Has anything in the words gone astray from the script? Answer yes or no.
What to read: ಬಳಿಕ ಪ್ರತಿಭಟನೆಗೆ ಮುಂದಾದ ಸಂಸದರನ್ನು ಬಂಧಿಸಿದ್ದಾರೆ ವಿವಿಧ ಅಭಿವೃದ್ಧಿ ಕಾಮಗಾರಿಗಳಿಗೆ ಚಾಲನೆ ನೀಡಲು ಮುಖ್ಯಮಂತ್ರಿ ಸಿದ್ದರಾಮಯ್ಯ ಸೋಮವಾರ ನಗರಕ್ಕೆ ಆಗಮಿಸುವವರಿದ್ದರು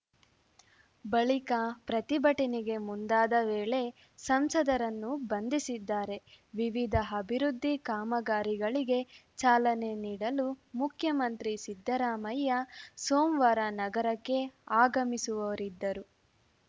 yes